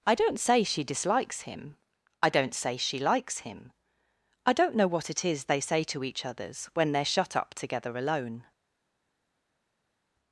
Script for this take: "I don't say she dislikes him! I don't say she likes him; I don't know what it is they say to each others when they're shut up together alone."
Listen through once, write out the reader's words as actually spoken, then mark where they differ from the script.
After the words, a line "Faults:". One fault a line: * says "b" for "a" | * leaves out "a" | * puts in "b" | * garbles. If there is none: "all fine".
"I don't say she dislikes him! I don't say she likes him; I don't know what it is they say to each others when they're shut up together alone."
Faults:
all fine